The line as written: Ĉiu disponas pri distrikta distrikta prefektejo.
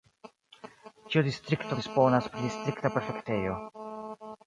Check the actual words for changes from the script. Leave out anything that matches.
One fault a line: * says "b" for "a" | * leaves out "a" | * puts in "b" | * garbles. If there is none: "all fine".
* puts in "distrikto"
* leaves out "distrikta"